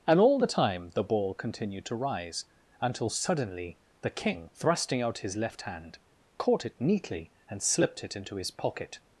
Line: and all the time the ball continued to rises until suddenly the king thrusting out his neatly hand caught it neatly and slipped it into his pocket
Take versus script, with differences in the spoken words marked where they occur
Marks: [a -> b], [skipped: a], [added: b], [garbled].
and all the time the ball continued to [rises -> rise] until suddenly the king thrusting out his [neatly -> left] hand caught it neatly and slipped it into his pocket